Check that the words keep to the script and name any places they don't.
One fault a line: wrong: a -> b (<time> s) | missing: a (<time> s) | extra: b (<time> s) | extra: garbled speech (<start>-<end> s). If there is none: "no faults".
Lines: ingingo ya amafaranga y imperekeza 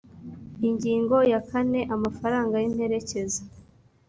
extra: kane (1.5 s)